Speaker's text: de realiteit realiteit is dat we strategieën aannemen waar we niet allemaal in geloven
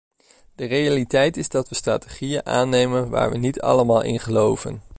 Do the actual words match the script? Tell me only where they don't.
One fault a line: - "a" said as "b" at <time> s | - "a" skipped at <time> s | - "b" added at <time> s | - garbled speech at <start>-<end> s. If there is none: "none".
- "realiteit" skipped at 1.4 s